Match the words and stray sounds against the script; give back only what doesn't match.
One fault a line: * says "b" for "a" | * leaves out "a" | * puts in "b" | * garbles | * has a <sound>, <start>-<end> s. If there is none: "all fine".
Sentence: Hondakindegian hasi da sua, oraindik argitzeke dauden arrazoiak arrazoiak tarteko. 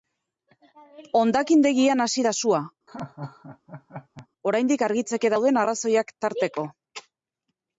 * has a laugh, 2.9-4.3 s
* leaves out "arrazoiak"